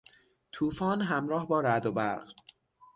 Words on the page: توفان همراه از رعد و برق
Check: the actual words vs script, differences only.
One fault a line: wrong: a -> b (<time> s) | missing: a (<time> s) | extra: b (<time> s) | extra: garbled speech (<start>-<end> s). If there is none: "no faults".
wrong: از -> با (1.5 s)